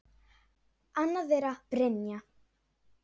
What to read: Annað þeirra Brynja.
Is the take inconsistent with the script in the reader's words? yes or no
no